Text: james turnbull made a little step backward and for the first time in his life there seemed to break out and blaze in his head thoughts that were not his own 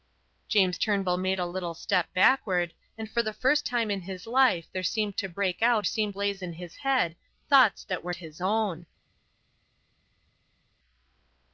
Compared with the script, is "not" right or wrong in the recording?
wrong